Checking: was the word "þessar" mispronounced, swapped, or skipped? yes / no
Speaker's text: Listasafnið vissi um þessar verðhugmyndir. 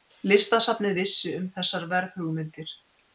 no